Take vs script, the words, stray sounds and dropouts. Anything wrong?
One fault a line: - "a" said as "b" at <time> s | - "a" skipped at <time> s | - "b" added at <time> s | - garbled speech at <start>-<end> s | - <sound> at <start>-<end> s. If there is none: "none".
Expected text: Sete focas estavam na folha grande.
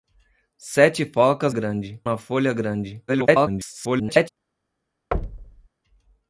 - "estavam" said as "grande" at 1.5 s
- garbled speech at 3.1-4.3 s
- thud at 5.1-5.7 s